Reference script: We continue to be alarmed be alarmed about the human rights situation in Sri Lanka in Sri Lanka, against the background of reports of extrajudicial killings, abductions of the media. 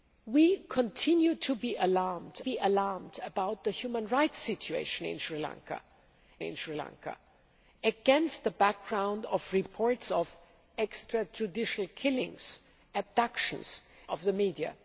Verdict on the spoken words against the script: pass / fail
pass